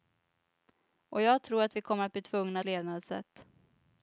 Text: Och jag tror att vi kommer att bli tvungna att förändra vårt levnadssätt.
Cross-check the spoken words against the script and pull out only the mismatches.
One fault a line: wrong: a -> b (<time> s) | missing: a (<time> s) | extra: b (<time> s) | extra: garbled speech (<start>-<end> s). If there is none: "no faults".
missing: att förändra vårt (2.6 s)